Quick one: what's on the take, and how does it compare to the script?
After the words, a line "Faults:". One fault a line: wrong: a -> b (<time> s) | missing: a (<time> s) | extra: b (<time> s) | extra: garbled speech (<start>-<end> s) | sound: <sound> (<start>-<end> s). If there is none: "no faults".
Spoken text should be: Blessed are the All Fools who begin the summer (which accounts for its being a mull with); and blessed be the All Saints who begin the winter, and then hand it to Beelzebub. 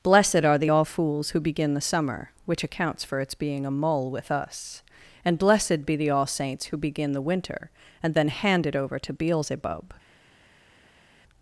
Blessed are the All Fools who begin the summer (which accounts for its being a mull with us); and blessed be the All Saints who begin the winter, and then hand it over to Beelzebub.
Faults:
extra: us (4.3 s)
extra: over (8.8 s)